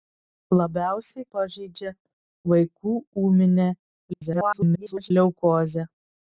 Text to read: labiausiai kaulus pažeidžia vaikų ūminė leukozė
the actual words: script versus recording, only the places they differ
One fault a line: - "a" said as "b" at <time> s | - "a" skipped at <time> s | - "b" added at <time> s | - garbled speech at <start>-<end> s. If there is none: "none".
- "kaulus" skipped at 1.2 s
- garbled speech at 4.1-5.1 s